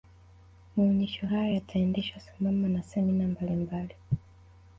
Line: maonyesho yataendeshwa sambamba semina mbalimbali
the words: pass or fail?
fail